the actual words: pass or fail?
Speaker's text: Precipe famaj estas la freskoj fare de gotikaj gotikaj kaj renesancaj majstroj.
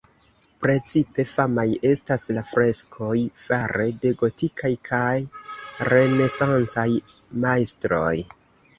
fail